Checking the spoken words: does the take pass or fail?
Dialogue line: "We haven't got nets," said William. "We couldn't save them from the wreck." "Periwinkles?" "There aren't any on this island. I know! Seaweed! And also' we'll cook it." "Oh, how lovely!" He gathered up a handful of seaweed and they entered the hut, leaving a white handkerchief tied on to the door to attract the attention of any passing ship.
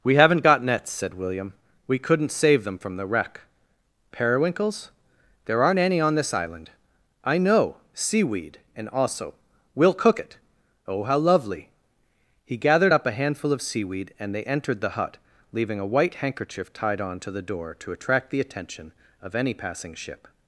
pass